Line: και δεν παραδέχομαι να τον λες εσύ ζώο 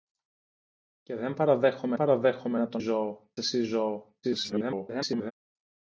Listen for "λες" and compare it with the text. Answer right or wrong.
wrong